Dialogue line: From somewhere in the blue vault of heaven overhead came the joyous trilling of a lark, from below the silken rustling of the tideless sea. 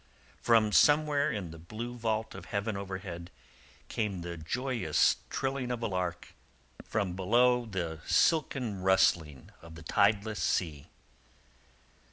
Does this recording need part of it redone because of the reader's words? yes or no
no